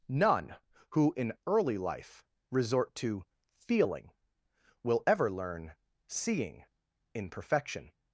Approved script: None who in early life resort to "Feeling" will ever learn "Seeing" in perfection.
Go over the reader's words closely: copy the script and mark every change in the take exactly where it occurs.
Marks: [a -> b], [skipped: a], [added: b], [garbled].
None who in early life resort to "Feeling" will ever learn "Seeing" in perfection.